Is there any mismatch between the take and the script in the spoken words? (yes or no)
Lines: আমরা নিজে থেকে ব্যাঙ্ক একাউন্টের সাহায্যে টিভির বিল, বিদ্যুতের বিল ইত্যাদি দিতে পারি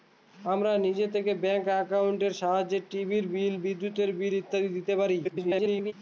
yes